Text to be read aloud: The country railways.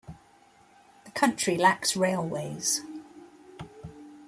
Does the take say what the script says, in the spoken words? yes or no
no